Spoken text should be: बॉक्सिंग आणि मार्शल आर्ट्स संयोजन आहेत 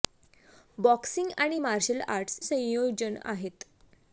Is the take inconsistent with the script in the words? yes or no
no